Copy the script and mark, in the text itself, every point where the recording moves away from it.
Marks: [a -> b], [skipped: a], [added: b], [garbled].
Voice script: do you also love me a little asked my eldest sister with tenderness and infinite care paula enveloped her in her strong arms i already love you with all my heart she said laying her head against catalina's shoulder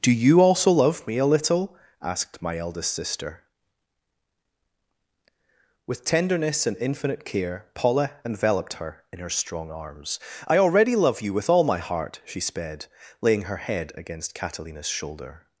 do you also love me a little asked my eldest sister with tenderness and infinite care paula enveloped her in her strong arms i already love you with all my heart she [said -> sped] laying her head against catalina's shoulder